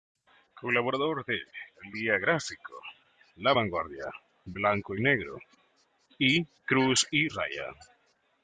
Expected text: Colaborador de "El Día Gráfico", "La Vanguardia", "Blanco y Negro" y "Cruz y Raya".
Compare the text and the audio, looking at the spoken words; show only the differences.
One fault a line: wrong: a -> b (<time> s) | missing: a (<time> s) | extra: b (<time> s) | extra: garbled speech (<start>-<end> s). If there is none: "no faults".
no faults